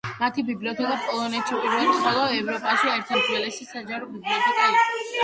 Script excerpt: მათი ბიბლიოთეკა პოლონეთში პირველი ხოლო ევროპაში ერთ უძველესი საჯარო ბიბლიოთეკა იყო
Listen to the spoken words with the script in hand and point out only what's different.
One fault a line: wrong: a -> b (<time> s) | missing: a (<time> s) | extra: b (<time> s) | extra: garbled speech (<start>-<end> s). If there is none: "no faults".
no faults